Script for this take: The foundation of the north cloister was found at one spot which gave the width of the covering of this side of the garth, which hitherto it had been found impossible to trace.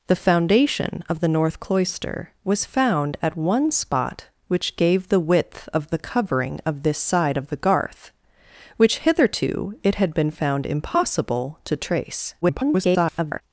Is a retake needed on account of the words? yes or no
yes